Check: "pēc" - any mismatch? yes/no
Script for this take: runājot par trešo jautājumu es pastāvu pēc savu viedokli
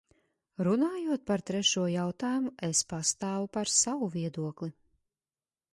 yes